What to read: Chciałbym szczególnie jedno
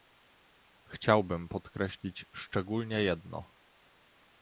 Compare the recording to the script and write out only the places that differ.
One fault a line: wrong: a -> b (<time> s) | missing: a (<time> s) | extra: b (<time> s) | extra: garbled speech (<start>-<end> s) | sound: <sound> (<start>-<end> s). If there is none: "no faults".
extra: podkreślić (1.5 s)